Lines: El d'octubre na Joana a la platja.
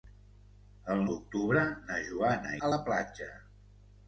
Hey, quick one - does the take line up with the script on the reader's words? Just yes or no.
yes